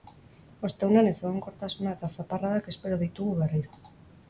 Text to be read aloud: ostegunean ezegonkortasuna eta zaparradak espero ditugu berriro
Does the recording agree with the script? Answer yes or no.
yes